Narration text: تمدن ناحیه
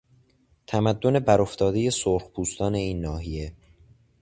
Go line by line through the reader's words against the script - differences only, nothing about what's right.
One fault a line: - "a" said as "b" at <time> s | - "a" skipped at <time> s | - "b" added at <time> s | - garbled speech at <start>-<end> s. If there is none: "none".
- "برافتادهی سرخپوستان این" added at 1.2 s